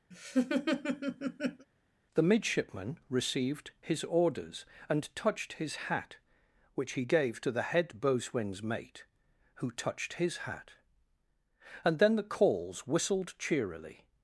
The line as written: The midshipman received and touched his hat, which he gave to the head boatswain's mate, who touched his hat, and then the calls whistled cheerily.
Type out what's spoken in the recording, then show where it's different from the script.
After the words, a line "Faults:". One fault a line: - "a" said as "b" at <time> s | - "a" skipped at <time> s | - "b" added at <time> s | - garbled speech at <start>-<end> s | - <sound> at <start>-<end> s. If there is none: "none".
The midshipman received his orders, and touched his hat, which he gave to the head boatswain's mate, who touched his hat, and then the calls whistled cheerily.
Faults:
- laugh at 0.1-1.7 s
- "his orders" added at 3.8 s